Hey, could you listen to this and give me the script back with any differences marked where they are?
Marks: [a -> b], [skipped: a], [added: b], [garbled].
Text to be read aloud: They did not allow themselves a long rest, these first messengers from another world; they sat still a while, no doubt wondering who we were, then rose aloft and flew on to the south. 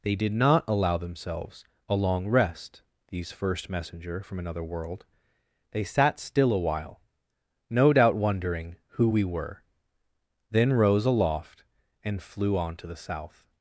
They did not allow themselves a long rest, these first [messengers -> messenger] from another world; they sat still a while, no doubt wondering who we were, then rose aloft and flew on to the south.